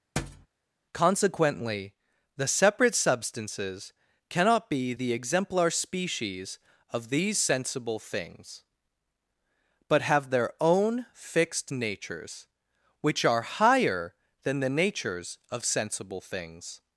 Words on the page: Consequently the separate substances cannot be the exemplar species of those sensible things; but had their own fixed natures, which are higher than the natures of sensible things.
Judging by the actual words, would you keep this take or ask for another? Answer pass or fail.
fail